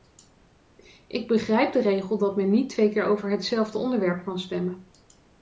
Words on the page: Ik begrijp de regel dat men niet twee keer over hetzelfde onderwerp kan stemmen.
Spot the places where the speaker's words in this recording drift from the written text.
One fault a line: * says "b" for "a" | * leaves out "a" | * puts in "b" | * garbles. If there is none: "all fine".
all fine